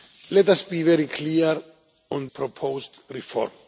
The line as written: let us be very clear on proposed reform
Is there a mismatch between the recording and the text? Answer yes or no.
no